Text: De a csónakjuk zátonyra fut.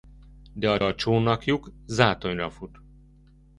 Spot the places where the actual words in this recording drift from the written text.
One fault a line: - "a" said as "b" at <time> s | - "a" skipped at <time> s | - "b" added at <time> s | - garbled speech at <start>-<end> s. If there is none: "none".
- "a" added at 0.8 s